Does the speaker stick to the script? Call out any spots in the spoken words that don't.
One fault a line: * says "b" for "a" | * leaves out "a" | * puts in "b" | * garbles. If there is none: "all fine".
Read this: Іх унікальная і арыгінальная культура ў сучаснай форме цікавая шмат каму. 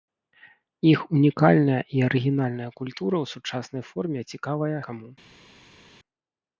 * leaves out "шмат"